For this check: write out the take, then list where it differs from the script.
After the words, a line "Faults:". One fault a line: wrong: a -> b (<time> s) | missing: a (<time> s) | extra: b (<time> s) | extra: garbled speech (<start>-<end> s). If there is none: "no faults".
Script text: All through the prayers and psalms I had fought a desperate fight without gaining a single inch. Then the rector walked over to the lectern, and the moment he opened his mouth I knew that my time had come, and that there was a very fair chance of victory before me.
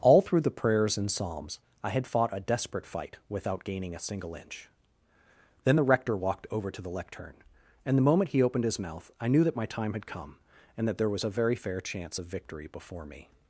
All through the prayers and psalms I had fought a desperate fight without gaining a single inch. Then the rector walked over to the lectern, and the moment he opened his mouth I knew that my time had come, and that there was a very fair chance of victory before me.
Faults:
no faults